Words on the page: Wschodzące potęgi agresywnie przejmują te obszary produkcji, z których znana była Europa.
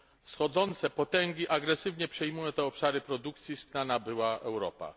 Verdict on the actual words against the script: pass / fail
fail